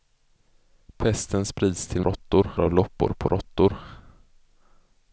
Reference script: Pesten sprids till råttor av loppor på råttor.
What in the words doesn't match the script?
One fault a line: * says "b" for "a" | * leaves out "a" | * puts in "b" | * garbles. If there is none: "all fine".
all fine